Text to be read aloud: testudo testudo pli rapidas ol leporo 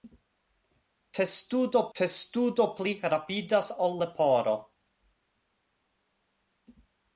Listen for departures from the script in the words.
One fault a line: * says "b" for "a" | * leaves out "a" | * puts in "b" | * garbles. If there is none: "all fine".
all fine